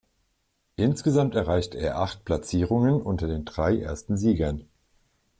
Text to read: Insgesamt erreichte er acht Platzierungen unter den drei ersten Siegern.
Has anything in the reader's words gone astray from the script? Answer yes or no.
no